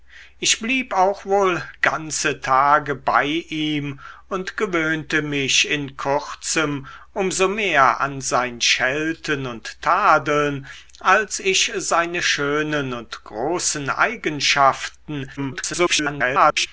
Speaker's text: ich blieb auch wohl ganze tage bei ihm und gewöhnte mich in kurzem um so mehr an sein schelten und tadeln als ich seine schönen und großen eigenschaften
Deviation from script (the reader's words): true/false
true